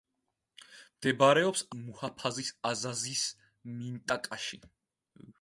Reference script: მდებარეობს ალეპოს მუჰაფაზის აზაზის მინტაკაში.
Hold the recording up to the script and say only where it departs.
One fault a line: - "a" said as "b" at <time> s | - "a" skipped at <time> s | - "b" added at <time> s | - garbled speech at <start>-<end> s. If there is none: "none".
- "ალეპოს" skipped at 1.6 s